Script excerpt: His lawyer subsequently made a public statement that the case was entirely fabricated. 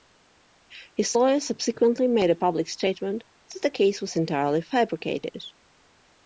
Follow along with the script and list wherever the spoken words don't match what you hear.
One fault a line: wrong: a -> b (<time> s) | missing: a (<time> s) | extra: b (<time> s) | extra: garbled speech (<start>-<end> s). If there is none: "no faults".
no faults